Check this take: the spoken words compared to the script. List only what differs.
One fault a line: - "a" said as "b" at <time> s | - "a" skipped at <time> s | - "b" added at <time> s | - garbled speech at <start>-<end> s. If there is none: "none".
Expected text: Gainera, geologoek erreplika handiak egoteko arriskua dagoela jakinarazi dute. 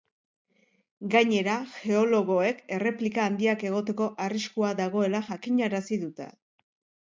none